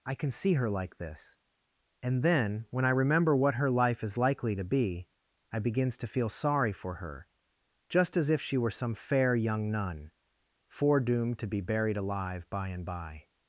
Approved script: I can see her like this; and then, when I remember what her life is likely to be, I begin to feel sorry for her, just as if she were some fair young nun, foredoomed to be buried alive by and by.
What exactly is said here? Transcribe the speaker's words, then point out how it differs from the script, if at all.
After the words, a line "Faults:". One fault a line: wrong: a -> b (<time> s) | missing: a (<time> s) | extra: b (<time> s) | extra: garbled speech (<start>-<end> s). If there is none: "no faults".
I can see her like this; and then, when I remember what her life is likely to be, I begins to feel sorry for her, just as if she were some fair young nun, foredoomed to be buried alive by and by.
Faults:
wrong: begin -> begins (5.6 s)